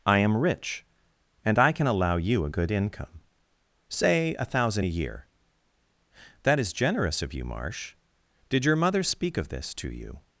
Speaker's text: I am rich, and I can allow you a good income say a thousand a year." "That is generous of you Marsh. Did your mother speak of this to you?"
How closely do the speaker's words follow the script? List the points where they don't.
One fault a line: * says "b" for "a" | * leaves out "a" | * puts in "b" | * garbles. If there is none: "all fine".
all fine